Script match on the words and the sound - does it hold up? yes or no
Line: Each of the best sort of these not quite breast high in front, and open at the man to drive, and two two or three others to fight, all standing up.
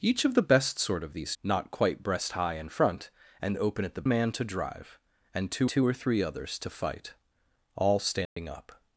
no